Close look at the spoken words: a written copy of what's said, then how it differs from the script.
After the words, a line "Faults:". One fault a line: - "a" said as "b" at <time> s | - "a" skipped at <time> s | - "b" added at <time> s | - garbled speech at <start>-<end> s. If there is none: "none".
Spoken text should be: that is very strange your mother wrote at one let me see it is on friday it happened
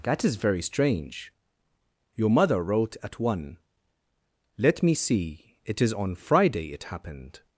that is very strange your mother wrote at one let me see it is on friday it happened
Faults:
none